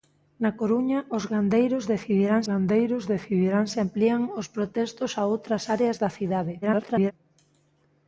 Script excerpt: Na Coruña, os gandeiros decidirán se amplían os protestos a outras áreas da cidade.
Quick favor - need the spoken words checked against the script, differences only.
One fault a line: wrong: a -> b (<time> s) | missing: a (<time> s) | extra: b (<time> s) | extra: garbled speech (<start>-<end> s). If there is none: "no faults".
extra: gandeiros decidirán (2.5 s)
extra: garbled speech (6.6-7.1 s)